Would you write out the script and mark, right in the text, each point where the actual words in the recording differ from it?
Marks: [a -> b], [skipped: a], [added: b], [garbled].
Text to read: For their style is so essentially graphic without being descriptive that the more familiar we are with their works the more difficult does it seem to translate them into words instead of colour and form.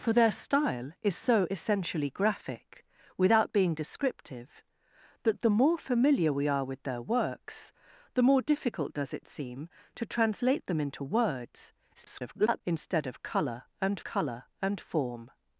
For their style is so essentially graphic without being descriptive that the more familiar we are with their works the more difficult does it seem to translate them into words [garbled] instead of colour and [added: colour and] form.